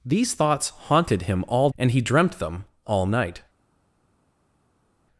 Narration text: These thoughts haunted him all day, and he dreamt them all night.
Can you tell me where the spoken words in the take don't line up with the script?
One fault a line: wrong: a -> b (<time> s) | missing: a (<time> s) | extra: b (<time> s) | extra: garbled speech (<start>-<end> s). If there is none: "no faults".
missing: day (1.7 s)